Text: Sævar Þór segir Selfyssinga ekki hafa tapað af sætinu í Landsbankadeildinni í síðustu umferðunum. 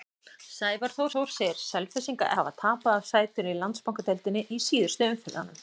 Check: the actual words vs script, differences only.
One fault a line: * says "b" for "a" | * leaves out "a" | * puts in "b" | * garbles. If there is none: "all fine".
* puts in "Þór"
* leaves out "ekki"